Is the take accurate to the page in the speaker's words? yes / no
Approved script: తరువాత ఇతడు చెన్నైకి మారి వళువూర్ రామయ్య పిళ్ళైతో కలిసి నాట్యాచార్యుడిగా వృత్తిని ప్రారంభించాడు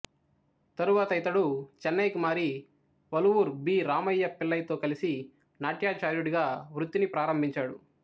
no